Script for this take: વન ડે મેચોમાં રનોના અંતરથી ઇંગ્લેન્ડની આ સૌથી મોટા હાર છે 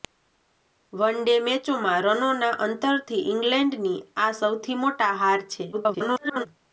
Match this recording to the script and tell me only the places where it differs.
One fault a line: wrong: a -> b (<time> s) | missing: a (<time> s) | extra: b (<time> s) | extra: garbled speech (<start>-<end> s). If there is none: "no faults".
extra: garbled speech (5.7-6.5 s)